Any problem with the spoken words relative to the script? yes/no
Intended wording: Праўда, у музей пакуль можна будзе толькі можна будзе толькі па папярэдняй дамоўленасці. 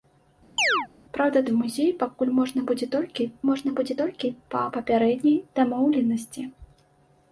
no